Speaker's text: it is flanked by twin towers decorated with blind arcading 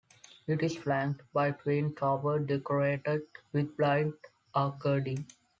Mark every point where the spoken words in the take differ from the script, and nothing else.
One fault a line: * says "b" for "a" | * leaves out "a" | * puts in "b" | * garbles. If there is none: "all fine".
all fine